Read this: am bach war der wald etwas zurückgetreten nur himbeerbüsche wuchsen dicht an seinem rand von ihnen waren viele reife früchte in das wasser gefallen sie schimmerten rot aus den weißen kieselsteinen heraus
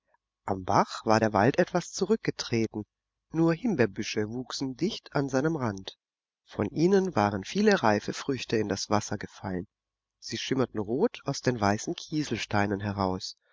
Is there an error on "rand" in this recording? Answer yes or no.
no